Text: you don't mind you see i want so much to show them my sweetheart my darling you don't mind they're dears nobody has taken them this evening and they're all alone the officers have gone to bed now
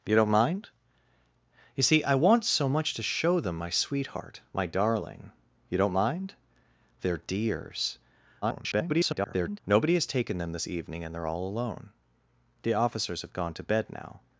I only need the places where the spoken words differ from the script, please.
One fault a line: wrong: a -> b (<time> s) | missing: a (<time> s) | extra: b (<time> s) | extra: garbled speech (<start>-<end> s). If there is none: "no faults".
extra: garbled speech (8.4-9.6 s)